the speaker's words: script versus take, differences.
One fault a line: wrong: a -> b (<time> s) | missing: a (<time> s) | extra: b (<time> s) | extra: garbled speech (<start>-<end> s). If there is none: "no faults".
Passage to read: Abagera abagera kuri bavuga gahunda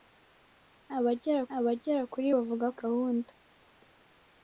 no faults